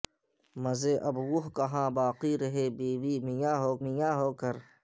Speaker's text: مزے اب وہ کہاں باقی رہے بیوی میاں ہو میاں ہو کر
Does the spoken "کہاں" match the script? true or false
true